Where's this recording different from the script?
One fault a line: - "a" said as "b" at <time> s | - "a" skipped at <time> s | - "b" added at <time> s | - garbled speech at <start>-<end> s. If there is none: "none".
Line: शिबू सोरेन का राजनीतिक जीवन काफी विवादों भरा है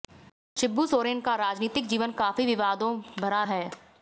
none